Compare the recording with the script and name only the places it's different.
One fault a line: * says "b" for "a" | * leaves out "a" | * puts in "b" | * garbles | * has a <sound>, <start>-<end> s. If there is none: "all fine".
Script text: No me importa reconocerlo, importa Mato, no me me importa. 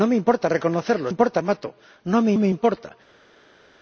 all fine